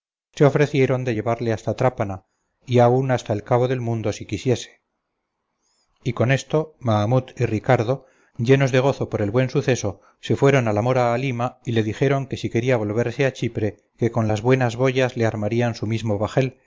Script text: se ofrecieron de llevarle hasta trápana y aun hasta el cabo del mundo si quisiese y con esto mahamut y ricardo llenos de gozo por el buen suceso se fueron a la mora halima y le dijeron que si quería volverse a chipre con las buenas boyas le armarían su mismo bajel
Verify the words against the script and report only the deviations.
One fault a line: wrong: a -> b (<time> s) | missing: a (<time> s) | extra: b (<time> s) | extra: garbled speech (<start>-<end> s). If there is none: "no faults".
extra: que (14.0 s)